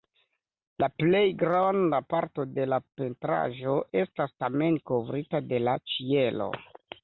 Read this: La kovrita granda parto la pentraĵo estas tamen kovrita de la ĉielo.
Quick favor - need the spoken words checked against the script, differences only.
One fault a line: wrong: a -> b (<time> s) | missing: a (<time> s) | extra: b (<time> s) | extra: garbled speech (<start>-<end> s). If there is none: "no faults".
wrong: kovrita -> plej (1.0 s)
extra: de (2.5 s)